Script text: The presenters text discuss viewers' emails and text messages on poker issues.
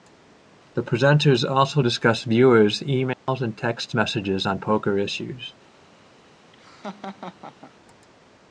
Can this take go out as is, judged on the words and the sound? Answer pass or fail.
fail